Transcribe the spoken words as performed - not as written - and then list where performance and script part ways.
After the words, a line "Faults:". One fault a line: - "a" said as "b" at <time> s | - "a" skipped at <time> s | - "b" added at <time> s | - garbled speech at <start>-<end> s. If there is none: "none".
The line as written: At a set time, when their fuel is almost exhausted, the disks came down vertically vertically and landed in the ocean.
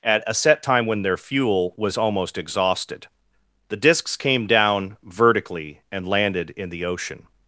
At a set time, when their fuel was almost exhausted, the disks came down vertically and landed in the ocean.
Faults:
- "is" said as "was" at 1.8 s
- "vertically" skipped at 5.8 s